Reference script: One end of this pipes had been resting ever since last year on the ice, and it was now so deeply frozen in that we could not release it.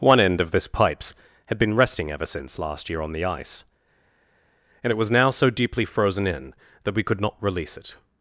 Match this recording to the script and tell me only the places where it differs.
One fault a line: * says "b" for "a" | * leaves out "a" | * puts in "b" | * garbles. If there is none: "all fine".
all fine